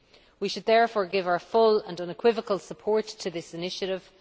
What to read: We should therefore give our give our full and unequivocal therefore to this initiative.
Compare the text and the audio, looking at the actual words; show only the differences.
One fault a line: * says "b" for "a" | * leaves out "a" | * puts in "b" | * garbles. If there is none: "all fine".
* leaves out "give our"
* says "support" for "therefore"